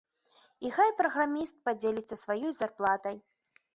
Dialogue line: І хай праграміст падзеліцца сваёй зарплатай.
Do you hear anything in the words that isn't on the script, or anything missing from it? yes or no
no